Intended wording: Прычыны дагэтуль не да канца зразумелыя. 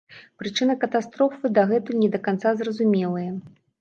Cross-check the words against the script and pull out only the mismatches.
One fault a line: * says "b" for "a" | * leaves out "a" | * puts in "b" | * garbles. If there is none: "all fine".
* puts in "катастрофы"